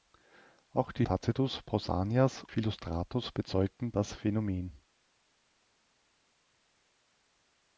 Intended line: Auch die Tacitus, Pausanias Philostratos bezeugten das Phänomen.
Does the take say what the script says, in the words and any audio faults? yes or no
yes